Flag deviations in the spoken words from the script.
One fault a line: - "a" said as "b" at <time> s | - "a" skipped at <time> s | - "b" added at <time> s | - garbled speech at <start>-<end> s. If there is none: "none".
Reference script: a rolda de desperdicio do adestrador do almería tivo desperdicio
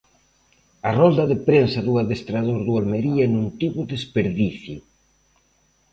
- "desperdicio" said as "prensa" at 1.5 s
- "non" added at 3.3 s